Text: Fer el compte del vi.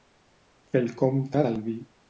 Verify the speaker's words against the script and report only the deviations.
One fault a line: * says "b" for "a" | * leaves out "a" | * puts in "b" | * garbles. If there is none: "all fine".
all fine